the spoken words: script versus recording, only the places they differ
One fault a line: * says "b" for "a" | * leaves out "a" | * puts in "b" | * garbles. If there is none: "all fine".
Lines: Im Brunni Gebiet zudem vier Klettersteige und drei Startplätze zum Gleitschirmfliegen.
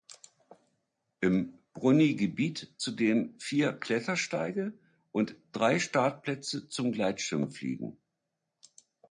all fine